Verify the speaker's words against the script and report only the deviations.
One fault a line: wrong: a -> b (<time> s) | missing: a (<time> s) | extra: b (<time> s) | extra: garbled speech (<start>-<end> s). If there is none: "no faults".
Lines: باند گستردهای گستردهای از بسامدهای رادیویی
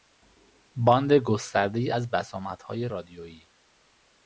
missing: گستردهای (1.9 s)